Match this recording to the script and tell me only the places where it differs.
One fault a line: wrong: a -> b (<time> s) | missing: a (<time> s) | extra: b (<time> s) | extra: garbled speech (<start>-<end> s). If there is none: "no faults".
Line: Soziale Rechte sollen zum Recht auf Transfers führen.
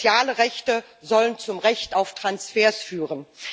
no faults